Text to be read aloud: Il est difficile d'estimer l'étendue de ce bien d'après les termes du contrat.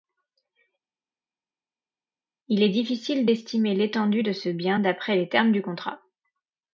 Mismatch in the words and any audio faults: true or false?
false